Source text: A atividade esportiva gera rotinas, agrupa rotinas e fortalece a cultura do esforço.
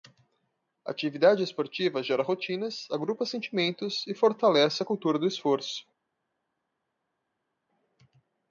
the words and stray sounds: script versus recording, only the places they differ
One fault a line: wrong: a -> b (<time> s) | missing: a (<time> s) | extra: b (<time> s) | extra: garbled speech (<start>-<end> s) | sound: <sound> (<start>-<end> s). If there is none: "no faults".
wrong: rotinas -> sentimentos (3.2 s)